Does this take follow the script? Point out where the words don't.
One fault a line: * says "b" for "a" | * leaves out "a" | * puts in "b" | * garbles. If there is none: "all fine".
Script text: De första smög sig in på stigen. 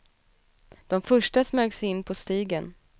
all fine